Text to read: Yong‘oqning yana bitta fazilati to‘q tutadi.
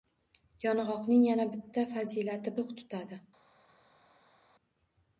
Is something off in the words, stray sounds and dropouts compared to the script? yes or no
no